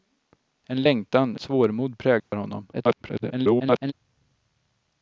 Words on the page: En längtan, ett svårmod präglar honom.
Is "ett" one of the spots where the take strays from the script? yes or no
yes